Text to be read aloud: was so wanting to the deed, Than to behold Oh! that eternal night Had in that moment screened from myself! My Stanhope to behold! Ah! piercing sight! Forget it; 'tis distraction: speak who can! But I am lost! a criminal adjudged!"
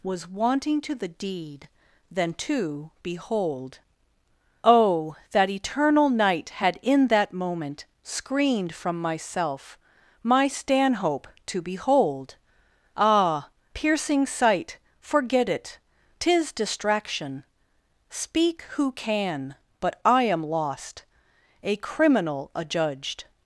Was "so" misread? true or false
true